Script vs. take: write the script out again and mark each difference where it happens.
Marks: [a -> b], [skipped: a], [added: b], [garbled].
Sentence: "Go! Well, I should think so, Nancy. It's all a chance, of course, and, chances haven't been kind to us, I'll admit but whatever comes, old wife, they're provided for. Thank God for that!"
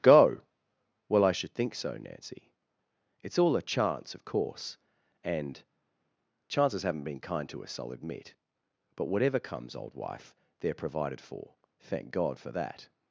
"Go! Well, I should think so, Nancy. It's all a chance, of course, and, chances haven't been kind to us, I'll admit but whatever comes, old wife, they're provided for. Thank God for that!"